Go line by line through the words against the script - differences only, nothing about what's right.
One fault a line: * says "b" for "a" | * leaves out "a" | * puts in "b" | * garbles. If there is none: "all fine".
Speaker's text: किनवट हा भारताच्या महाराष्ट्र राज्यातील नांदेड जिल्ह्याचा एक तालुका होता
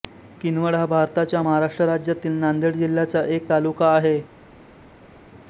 * says "आहे" for "होता"